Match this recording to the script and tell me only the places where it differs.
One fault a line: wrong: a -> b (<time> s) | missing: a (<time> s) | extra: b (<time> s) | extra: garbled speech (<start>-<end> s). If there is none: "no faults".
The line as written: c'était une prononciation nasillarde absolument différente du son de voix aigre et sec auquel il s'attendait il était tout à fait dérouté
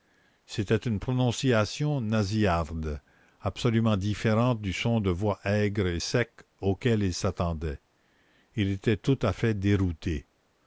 no faults